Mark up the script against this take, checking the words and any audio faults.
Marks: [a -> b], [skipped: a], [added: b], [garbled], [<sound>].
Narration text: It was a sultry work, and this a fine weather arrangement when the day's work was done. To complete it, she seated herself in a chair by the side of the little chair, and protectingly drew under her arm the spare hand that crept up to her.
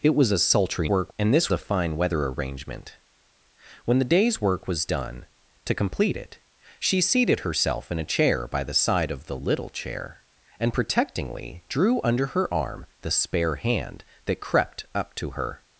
It was a sultry work, and this a fine weather arrangement when the day's work was done. To complete it, she seated herself in a chair by the side of the little chair, and protectingly drew under her arm the spare hand that crept up to her.